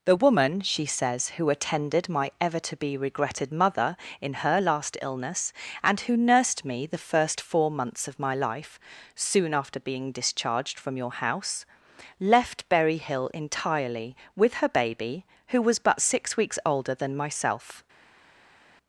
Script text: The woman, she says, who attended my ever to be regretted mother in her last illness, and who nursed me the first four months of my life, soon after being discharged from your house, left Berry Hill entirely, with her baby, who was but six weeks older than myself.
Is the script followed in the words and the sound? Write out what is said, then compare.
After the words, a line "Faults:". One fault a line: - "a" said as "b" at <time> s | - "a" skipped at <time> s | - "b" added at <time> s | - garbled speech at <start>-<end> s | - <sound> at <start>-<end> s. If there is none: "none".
The woman, she says, who attended my ever to be regretted mother in her last illness, and who nursed me the first four months of my life, soon after being discharged from your house, left Berry Hill entirely, with her baby, who was but six weeks older than myself.
Faults:
none